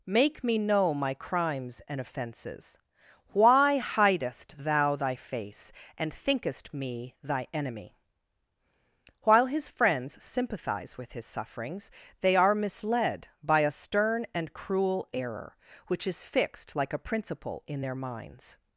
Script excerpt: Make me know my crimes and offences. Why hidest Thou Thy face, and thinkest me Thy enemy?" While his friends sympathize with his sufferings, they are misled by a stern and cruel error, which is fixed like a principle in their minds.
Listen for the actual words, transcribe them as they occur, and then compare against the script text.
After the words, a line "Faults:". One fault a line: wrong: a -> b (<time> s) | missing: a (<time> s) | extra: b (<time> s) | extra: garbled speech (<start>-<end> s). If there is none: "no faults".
Make me know my crimes and offences. Why hidest Thou Thy face, and thinkest me Thy enemy?" While his friends sympathize with his sufferings, they are misled by a stern and cruel error, which is fixed like a principle in their minds.
Faults:
no faults